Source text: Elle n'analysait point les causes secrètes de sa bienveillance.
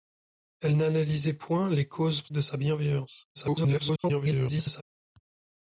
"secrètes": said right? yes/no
no